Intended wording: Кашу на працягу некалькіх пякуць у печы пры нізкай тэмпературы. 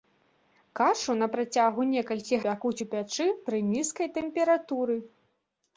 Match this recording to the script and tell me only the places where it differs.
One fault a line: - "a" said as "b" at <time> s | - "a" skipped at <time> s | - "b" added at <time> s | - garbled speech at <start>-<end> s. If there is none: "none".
none